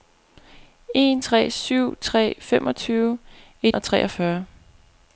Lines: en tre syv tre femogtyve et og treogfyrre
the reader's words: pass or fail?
pass